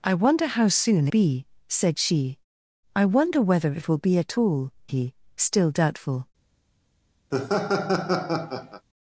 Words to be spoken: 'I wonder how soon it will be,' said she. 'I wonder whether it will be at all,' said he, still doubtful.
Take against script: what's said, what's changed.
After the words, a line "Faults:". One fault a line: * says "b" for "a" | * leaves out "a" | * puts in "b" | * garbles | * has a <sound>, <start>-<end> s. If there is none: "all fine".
'I wonder how soon be,' said she. 'I wonder whether it will be at all,' he, still doubtful.
Faults:
* leaves out "it will"
* leaves out "said"
* has a laugh, 7.3-8.9 s